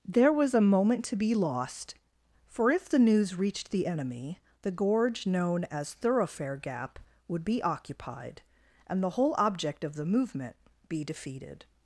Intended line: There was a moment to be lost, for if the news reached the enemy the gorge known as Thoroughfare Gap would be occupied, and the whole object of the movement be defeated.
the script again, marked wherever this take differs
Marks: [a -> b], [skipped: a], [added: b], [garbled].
There was a moment to be lost, for if the news reached the enemy the gorge known as Thoroughfare Gap would be occupied, and the whole object of the movement be defeated.